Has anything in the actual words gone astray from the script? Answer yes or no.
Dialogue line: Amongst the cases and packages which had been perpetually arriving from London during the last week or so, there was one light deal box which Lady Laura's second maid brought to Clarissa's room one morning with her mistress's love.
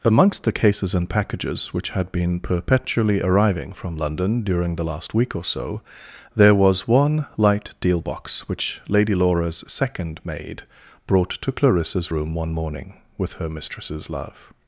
no